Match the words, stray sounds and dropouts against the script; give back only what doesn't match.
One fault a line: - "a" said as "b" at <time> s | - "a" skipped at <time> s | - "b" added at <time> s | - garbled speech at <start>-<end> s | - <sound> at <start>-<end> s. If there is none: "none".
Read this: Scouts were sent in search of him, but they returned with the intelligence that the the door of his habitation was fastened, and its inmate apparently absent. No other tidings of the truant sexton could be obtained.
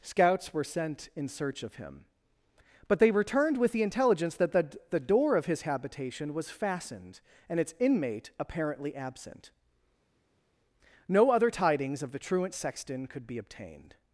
none